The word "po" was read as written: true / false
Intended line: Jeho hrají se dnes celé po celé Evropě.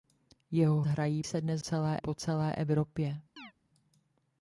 true